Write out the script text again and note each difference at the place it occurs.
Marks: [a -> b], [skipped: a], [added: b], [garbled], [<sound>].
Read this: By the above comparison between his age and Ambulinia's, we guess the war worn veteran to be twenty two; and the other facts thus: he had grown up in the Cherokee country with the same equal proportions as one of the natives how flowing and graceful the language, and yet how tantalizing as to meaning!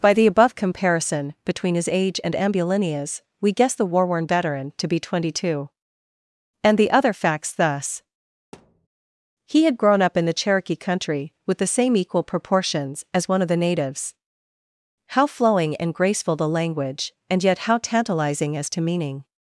By the above comparison between his age and Ambulinia's, we guess the war worn veteran to be twenty two; and the other facts thus: [thud] he had grown up in the Cherokee country with the same equal proportions as one of the natives how flowing and graceful the language, and yet how tantalizing as to meaning!